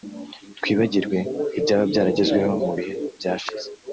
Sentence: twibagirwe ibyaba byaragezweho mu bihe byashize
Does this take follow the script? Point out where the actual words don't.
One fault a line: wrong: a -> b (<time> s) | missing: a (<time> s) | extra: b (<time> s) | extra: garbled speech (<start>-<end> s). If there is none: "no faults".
no faults